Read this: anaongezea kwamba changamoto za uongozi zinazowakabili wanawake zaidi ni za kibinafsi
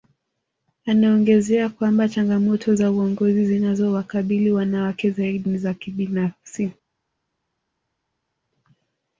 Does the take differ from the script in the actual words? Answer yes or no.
no